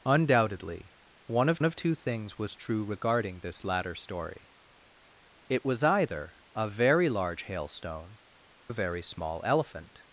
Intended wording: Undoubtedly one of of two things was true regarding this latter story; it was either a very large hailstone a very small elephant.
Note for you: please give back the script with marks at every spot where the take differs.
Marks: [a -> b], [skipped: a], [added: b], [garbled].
Undoubtedly one of of two things was true regarding this latter story; it was either a very large hailstone a very small elephant.